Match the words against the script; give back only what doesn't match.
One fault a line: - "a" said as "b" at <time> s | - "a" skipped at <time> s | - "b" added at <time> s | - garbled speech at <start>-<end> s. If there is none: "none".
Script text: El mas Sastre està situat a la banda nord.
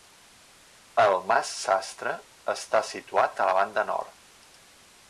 none